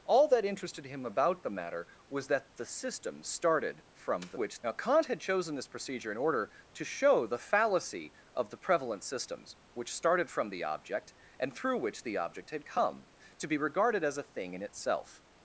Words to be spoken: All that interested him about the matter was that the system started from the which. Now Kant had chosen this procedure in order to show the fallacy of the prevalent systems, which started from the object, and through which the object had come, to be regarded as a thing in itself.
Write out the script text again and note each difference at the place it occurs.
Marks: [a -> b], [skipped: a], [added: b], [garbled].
All that interested him about the matter was that the system started from the which. Now Kant had chosen this procedure in order to show the fallacy of the prevalent systems, which started from the object, and through which the object had come, to be regarded as a thing in itself.